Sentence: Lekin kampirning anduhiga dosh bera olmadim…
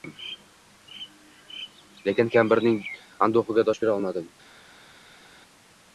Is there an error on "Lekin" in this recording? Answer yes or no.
no